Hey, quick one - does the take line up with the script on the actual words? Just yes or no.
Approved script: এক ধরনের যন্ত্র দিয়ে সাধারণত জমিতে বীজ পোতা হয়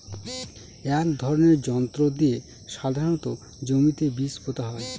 yes